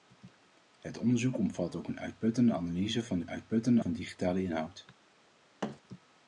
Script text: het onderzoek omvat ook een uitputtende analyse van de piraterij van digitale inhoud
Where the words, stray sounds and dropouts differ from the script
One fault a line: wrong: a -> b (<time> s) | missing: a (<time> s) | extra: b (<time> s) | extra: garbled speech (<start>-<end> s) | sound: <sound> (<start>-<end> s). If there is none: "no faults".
wrong: piraterij -> uitputtende (3.3 s)
sound: thud (5.6-5.8 s)